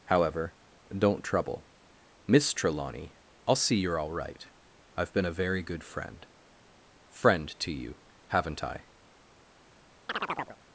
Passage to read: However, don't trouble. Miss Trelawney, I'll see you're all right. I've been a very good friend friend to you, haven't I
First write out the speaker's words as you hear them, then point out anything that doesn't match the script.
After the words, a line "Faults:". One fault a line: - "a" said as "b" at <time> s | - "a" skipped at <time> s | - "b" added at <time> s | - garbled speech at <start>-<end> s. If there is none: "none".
However, don't trouble. Miss Trelawney, I'll see you're all right. I've been a very good friend friend to you, haven't I
Faults:
none